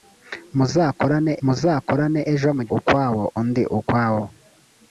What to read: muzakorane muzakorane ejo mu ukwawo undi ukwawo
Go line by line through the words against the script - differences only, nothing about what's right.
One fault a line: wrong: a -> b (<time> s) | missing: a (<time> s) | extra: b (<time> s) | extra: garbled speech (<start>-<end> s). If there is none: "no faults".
no faults